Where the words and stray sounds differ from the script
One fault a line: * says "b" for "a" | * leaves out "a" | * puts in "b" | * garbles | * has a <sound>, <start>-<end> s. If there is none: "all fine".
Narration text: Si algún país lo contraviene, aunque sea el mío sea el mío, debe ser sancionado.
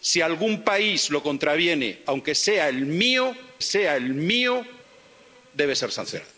all fine